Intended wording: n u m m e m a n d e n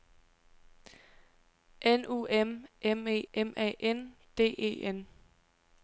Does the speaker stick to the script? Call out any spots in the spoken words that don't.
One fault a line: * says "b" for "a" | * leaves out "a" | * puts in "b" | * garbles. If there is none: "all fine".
all fine